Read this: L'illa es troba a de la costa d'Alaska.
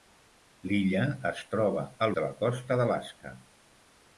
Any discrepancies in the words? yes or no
no